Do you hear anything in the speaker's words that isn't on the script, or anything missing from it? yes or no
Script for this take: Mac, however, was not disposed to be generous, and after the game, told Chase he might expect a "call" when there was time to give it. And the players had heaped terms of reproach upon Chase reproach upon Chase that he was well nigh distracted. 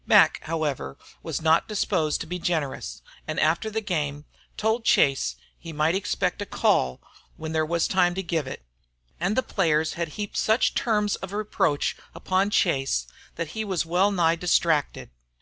yes